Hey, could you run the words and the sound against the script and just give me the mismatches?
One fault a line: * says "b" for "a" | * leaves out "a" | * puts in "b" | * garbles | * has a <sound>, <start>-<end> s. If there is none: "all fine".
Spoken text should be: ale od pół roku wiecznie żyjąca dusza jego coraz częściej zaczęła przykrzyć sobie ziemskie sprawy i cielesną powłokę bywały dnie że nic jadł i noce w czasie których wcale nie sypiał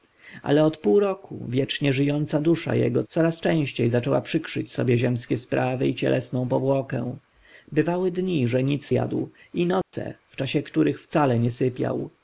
* has a dropout, 9.8-9.9 s